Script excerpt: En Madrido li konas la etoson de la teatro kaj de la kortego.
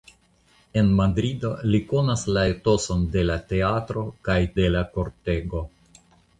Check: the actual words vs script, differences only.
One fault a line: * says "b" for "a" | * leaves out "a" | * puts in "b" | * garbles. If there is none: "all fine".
all fine